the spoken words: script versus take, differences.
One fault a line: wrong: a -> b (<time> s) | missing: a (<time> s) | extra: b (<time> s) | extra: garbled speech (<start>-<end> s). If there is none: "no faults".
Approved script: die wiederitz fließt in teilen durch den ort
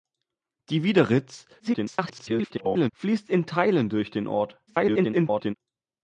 extra: garbled speech (1.6-2.9 s)
extra: garbled speech (4.7-5.5 s)